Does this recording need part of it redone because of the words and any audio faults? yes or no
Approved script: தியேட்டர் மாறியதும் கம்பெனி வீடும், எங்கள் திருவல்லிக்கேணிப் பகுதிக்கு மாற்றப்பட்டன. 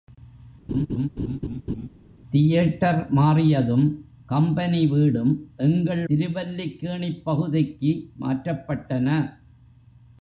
yes